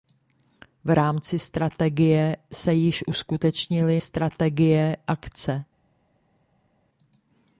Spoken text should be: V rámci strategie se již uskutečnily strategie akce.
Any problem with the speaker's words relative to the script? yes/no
no